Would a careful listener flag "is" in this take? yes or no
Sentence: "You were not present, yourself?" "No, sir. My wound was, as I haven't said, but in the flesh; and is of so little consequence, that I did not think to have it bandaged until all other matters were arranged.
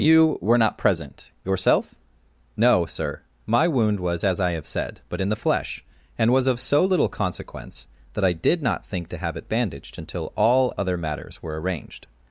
yes